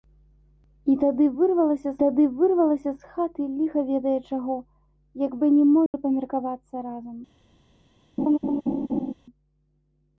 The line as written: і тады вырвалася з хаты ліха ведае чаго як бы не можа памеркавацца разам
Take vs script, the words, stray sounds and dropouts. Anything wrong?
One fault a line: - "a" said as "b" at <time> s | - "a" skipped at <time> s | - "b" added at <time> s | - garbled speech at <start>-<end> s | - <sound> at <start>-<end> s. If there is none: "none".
- "тады вырвалася" added at 2.0 s
- dropout at 5.9-5.9 s
- laugh at 8.2-9.1 s